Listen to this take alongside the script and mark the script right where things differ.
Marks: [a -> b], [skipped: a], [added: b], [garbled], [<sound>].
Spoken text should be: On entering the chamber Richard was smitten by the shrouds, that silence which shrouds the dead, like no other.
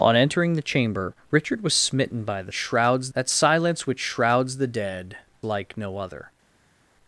On entering the chamber Richard was smitten by the shrouds, that silence which shrouds the dead, like no other.